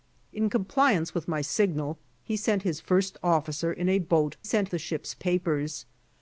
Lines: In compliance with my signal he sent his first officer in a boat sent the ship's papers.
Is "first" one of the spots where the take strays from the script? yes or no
no